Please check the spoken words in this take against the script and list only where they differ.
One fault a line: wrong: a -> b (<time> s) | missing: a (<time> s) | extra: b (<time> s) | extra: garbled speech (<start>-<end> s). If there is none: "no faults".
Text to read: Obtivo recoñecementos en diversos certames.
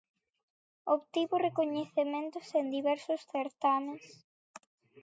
no faults